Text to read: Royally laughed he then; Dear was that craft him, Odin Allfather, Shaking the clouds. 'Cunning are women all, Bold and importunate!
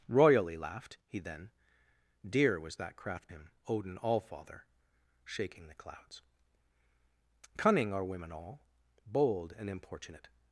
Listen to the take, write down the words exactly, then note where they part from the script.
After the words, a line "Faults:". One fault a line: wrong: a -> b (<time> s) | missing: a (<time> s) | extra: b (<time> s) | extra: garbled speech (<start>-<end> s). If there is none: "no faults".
Royally laughed he then; Dear was that craft him, Odin Allfather, Shaking the clouds. 'Cunning are women all, Bold and importunate!
Faults:
no faults